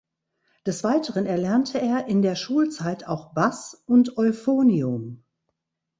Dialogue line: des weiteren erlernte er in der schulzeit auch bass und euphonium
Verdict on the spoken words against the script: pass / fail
pass